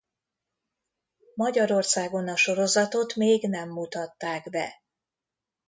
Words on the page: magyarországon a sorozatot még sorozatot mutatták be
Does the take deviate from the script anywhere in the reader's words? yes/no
yes